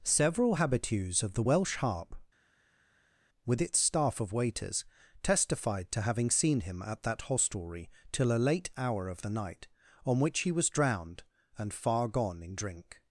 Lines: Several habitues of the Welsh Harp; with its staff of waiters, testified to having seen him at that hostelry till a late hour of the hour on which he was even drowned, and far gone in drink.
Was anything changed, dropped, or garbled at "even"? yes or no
yes